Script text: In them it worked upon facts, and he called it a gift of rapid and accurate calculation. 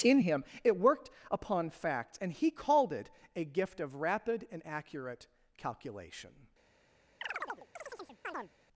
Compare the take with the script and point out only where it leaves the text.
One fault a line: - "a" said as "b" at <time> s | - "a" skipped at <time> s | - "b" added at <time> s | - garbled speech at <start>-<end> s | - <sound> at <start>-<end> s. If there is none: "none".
- "them" said as "him" at 0.2 s
- chirp at 7.2-8.5 s